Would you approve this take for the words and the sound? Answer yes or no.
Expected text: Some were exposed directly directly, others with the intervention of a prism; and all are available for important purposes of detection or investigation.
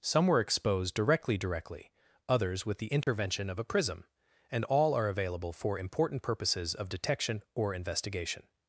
no